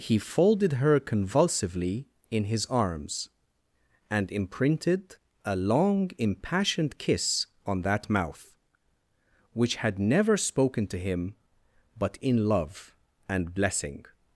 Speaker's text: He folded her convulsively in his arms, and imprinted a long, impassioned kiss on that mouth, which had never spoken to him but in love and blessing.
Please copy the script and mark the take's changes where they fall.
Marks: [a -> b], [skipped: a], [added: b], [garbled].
He folded her convulsively in his arms, and imprinted a long, impassioned kiss on that mouth, which had never spoken to him but in love and blessing.